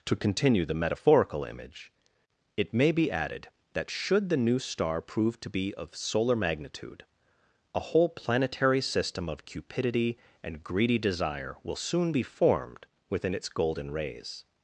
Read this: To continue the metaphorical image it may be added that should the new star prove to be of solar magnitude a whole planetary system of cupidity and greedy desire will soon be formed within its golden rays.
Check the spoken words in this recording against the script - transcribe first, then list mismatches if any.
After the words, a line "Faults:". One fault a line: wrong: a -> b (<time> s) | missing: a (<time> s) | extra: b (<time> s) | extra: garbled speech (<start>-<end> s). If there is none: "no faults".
To continue the metaphorical image it may be added that should the new star prove to be of solar magnitude a whole planetary system of cupidity and greedy desire will soon be formed within its golden rays.
Faults:
no faults